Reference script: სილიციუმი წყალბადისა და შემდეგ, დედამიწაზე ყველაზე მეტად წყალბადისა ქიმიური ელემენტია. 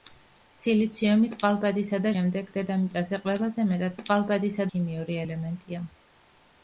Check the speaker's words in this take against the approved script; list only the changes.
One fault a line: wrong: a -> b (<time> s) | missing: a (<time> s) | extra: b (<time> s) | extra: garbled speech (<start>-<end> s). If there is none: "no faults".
no faults